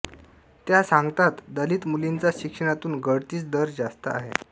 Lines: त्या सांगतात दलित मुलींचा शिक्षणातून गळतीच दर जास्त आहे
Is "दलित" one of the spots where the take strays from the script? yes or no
no